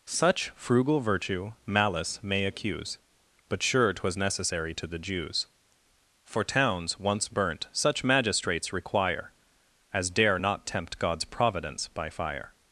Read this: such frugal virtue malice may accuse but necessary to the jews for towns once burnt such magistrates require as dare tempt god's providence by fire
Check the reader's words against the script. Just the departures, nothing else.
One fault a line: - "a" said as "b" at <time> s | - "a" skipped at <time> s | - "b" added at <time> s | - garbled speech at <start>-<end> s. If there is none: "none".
- "sure twas" added at 3.6 s
- "not" added at 10.4 s